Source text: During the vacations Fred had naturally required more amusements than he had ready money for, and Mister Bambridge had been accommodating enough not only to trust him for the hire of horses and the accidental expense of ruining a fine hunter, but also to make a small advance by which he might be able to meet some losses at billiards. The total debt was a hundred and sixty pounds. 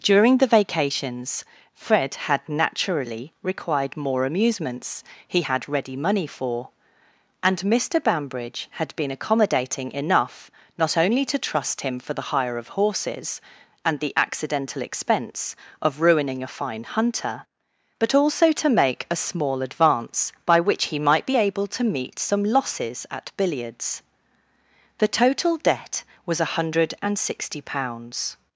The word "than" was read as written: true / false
false